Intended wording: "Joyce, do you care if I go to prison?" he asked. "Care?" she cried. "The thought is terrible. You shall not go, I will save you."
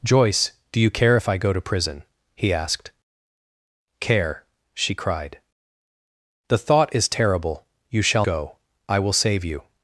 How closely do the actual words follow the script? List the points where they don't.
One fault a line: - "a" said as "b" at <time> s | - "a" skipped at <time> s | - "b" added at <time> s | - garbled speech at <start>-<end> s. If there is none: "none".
- "not" skipped at 8.3 s